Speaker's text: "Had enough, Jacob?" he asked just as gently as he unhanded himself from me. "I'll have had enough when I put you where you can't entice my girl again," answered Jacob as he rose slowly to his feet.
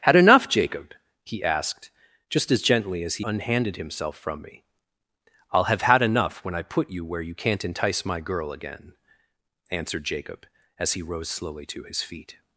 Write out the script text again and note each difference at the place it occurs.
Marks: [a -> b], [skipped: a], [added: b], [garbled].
"Had enough, Jacob?" he asked just as gently as he unhanded himself from me. "I'll have had enough when I put you where you can't entice my girl again," answered Jacob as he rose slowly to his feet.